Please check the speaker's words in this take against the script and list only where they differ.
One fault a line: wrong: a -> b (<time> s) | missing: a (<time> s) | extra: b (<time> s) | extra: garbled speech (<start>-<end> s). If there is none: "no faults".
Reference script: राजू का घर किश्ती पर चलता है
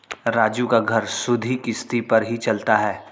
extra: सुधि (1.1 s)
extra: ही (2.2 s)